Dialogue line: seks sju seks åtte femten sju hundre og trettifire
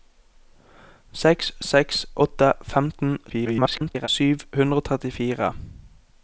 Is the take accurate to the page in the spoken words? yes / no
no